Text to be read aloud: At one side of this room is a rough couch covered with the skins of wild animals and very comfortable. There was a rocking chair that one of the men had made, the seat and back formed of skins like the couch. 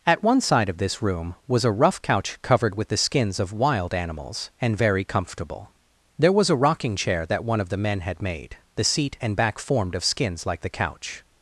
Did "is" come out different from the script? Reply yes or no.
yes